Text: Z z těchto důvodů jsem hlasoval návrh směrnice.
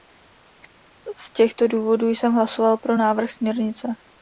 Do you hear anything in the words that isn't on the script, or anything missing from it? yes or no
yes